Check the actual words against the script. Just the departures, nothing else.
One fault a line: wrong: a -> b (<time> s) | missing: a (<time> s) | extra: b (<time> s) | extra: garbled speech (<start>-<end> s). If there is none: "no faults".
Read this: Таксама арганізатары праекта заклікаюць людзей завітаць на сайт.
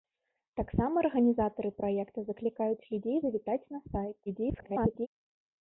extra: garbled speech (4.3-5.1 s)